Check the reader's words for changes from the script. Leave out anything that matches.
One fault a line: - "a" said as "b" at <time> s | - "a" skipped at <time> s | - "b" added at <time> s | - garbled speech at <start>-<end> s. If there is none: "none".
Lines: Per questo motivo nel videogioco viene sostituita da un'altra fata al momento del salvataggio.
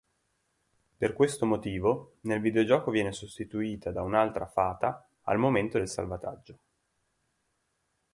none